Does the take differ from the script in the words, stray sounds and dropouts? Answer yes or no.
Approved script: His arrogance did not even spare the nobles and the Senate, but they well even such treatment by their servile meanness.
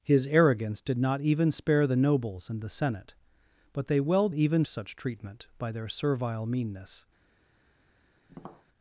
yes